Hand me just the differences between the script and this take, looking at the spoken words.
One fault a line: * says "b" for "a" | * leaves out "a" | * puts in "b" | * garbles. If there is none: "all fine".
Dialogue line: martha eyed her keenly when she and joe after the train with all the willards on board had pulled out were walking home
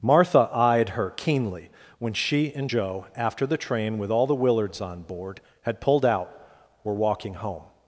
all fine